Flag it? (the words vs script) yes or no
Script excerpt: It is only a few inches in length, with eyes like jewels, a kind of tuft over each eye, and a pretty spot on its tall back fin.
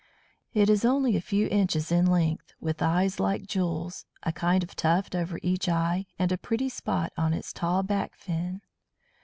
no